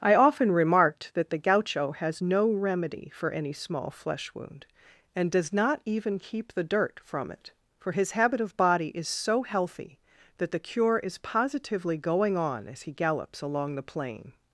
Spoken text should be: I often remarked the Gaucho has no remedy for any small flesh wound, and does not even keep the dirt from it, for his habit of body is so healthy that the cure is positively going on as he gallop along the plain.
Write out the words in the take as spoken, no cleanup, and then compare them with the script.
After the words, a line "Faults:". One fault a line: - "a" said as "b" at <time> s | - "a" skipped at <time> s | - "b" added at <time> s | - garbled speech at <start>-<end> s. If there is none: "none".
I often remarked that the Gaucho has no remedy for any small flesh wound, and does not even keep the dirt from it, for his habit of body is so healthy that the cure is positively going on as he gallops along the plain.
Faults:
- "that" added at 1.1 s
- "gallop" said as "gallops" at 12.9 s